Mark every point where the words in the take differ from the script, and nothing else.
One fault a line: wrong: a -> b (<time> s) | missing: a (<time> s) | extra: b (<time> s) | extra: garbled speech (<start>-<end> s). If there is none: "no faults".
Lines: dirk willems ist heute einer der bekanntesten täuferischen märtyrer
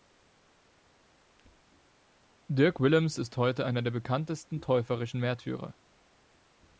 no faults